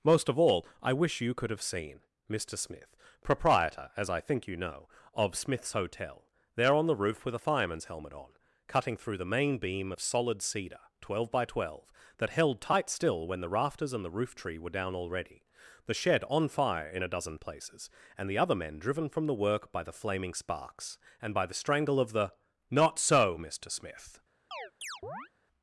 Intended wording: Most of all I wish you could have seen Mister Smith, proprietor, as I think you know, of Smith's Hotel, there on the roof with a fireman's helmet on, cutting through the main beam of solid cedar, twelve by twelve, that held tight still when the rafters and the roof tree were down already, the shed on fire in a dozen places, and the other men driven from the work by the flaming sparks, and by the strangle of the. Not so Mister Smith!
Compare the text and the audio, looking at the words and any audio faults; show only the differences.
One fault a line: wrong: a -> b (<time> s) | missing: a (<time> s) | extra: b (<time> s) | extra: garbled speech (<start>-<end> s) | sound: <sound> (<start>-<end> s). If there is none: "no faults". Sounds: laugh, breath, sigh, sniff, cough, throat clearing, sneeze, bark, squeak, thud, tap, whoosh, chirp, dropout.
sound: chirp (24.5-25.3 s)